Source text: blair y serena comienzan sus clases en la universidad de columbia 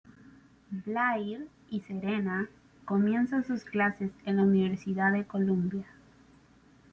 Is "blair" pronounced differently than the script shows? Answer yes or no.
no